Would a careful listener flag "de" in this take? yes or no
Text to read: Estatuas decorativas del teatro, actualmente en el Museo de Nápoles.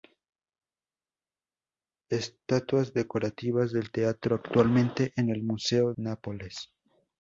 yes